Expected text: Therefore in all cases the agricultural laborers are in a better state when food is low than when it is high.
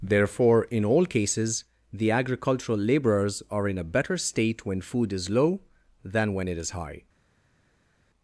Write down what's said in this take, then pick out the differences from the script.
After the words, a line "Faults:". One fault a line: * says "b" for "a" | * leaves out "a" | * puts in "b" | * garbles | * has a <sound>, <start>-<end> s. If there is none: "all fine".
Therefore in all cases the agricultural laborers are in a better state when food is low than when it is high.
Faults:
all fine